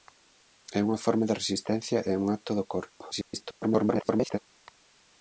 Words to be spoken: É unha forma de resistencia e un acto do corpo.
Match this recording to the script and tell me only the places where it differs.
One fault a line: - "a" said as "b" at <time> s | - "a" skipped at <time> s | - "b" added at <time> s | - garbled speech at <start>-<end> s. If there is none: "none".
- garbled speech at 3.1-4.4 s